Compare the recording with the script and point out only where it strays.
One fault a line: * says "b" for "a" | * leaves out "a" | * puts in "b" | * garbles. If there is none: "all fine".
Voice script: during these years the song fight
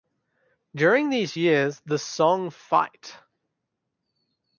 all fine